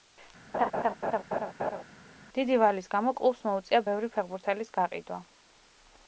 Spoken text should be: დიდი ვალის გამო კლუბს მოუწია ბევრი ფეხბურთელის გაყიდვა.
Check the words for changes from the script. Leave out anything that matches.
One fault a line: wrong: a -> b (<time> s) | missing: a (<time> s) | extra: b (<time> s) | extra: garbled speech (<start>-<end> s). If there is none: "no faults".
no faults